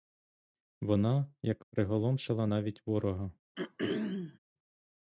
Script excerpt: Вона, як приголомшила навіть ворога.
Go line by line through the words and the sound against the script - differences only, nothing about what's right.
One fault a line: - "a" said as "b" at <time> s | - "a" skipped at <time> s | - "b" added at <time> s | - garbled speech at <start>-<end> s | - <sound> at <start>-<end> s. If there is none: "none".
- throat clearing at 3.5-4.4 s